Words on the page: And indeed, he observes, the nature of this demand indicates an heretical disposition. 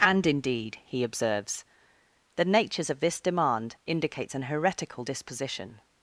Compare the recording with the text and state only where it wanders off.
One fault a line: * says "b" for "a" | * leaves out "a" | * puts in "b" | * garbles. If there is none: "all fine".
* says "natures" for "nature"